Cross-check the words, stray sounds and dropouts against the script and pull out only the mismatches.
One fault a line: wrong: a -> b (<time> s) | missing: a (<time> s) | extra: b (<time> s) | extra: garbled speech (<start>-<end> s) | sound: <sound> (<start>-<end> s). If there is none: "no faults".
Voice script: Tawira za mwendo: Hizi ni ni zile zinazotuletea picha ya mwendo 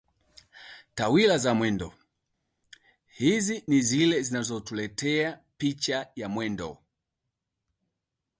missing: ni (3.8 s)